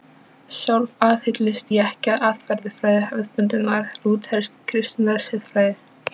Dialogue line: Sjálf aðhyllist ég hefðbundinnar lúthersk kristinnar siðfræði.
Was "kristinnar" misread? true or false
false